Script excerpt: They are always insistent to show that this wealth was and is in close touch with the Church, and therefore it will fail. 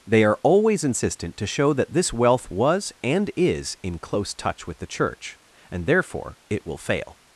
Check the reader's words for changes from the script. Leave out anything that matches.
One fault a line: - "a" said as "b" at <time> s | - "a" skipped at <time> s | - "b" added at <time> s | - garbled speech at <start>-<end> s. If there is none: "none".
none